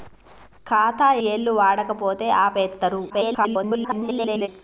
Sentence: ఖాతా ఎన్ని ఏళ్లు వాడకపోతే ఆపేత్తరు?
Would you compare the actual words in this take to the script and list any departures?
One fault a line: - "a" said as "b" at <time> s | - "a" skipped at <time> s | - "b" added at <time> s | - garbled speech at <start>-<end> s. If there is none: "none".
- "ఎన్ని" skipped at 1.1 s
- garbled speech at 3.1-4.5 s